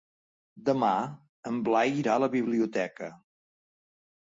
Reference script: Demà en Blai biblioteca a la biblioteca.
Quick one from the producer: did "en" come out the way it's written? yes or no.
yes